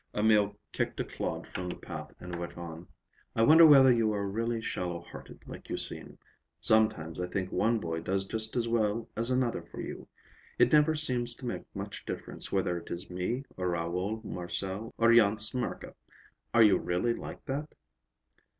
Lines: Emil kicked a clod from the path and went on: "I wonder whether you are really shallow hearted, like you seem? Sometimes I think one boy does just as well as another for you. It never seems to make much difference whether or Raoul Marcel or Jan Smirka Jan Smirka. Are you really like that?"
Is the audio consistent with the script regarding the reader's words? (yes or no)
no